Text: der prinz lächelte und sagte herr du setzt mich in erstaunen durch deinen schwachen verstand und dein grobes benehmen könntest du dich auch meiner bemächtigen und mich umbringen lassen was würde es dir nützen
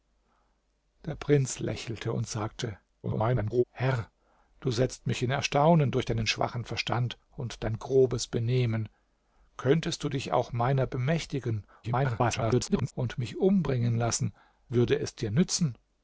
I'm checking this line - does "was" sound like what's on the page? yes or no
no